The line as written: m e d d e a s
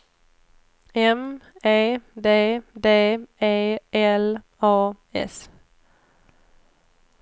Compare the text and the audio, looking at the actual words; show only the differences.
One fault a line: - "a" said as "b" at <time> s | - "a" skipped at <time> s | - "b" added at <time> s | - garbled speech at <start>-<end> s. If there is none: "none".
- "l" added at 3.9 s